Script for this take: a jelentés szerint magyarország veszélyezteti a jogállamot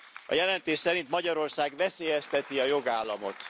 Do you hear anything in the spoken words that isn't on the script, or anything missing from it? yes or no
no